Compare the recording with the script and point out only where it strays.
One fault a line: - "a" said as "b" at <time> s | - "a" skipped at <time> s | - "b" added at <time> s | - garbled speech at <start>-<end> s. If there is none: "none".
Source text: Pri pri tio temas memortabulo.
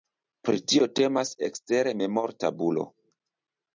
- "pri" skipped at 0.6 s
- "ekstere" added at 1.5 s